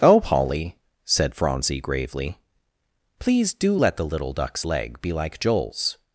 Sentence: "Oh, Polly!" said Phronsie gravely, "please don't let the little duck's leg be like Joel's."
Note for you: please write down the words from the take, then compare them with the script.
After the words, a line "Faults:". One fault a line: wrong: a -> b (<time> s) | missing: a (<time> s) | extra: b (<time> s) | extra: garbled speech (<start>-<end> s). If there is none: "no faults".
"Oh, Polly!" said Phronsie gravely, "please do let the little duck's leg be like Joel's."
Faults:
wrong: don't -> do (3.5 s)